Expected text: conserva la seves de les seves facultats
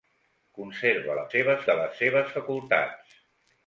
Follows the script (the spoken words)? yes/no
yes